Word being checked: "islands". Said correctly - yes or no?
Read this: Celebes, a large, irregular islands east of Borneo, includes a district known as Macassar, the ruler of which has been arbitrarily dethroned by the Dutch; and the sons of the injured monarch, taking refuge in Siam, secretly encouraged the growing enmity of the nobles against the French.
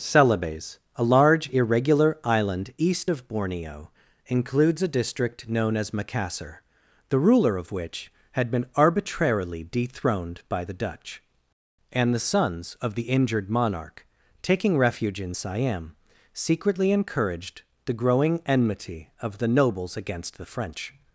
no